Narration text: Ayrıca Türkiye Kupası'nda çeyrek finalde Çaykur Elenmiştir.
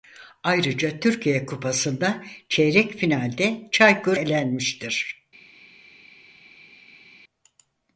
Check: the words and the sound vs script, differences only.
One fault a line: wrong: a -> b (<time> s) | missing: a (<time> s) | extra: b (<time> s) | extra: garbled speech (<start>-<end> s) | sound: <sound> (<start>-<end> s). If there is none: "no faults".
no faults